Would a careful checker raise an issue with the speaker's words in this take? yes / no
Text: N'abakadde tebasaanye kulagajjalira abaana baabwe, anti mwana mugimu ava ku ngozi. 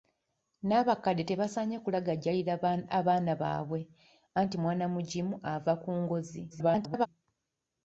yes